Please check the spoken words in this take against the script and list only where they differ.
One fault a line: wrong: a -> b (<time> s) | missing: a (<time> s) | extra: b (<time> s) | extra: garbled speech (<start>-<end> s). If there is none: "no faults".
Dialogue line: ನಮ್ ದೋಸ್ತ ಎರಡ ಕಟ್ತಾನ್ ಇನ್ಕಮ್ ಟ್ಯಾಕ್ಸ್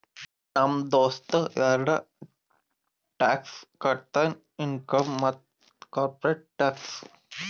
extra: ಟ್ಯಾಕ್ಸ್ (3.2 s)
extra: ಮತ್ತ ಕಾರ್ಪೊರೇಟ್ (5.2 s)